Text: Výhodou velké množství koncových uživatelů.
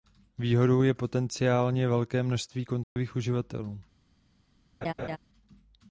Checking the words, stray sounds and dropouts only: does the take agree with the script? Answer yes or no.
no